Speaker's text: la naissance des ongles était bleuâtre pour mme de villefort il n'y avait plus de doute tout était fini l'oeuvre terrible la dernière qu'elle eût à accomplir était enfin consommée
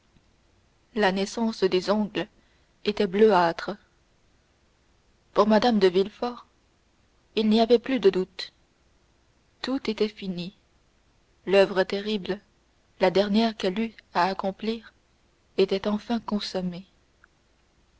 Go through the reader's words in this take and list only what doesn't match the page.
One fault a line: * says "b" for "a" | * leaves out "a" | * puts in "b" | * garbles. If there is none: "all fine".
all fine